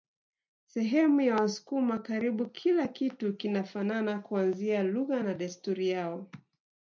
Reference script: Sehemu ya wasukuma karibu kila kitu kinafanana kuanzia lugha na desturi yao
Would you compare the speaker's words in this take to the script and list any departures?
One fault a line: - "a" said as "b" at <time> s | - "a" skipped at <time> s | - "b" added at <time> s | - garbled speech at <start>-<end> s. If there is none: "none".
none